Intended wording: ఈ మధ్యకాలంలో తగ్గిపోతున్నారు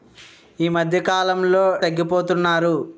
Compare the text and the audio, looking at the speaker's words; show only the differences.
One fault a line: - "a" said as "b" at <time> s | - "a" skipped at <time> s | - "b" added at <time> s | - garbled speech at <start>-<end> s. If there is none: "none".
none